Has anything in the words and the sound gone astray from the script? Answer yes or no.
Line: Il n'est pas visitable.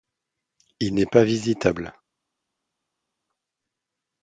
no